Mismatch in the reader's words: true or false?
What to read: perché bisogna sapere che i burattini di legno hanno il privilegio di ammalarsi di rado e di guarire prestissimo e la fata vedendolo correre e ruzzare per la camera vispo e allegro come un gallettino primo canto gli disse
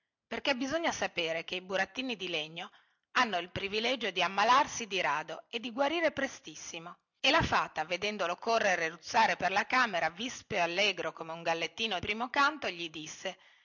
false